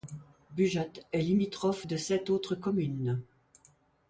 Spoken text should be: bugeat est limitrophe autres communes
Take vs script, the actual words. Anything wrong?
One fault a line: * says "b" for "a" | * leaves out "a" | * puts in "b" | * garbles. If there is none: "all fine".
* puts in "de sept"